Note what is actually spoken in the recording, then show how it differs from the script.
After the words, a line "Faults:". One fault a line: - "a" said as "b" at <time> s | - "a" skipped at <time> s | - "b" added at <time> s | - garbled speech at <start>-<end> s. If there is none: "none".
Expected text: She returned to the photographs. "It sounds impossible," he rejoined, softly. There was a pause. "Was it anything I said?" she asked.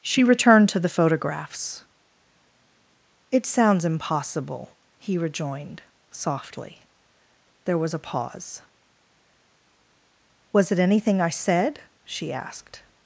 She returned to the photographs. "It sounds impossible," he rejoined, softly. There was a pause. "Was it anything I said?" she asked.
Faults:
none